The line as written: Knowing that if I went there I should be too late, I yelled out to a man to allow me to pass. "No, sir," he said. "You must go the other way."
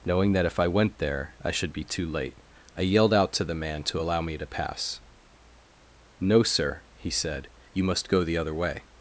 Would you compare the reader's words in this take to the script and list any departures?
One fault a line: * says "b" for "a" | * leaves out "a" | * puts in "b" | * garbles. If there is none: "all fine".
* says "the" for "a"